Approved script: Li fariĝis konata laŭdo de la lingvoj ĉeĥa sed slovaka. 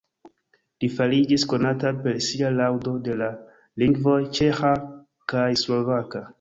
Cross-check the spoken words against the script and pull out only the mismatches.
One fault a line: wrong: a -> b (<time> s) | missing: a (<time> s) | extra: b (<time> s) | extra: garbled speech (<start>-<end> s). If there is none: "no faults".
extra: per sia (2.1 s)
wrong: sed -> kaj (5.3 s)